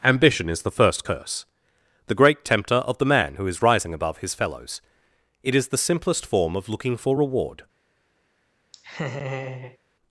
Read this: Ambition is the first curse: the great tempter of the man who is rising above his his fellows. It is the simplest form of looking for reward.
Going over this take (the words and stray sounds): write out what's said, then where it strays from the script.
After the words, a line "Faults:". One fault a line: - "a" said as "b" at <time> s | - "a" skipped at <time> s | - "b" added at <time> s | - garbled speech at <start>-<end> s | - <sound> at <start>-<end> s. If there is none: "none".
Ambition is the first curse: the great tempter of the man who is rising above his fellows. It is the simplest form of looking for reward.
Faults:
- "his" skipped at 4.3 s
- laugh at 8.7-9.8 s